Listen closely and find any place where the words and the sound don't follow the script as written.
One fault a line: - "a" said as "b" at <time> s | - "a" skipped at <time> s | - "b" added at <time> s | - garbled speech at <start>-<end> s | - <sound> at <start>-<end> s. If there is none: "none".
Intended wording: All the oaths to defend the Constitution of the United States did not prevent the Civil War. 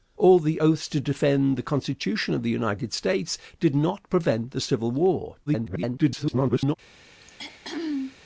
- garbled speech at 5.5-6.7 s
- throat clearing at 7.2-8.2 s